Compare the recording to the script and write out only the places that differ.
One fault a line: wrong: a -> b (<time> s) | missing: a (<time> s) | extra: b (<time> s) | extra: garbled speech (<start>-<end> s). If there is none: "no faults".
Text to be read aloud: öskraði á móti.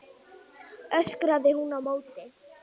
extra: hún (1.6 s)